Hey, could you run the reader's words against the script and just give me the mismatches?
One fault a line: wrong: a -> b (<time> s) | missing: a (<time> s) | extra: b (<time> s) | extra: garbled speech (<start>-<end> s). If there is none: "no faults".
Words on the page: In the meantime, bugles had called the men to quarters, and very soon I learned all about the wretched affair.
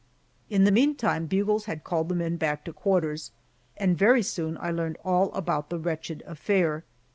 extra: back (2.4 s)